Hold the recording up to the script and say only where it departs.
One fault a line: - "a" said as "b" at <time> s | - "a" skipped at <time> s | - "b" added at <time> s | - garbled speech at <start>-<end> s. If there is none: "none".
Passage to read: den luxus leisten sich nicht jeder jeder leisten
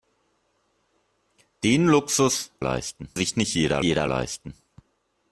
none